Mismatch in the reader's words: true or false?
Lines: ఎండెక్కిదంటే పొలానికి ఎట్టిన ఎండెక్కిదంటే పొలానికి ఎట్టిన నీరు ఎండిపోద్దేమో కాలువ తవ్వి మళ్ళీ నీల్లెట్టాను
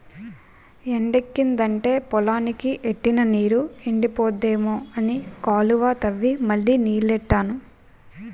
true